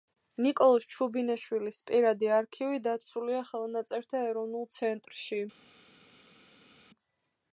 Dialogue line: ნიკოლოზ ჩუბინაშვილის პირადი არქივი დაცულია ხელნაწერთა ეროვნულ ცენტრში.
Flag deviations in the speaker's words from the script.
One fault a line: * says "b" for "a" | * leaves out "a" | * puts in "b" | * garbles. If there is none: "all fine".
all fine